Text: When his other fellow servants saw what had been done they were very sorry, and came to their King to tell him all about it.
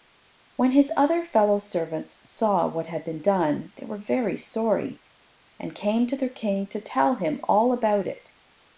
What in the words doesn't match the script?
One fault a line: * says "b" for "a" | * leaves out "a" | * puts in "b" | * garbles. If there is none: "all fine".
all fine